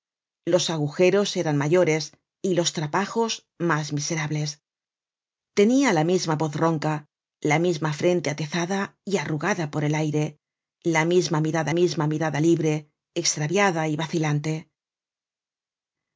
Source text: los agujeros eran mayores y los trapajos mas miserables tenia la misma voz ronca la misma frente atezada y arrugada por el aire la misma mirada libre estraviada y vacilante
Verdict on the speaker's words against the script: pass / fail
fail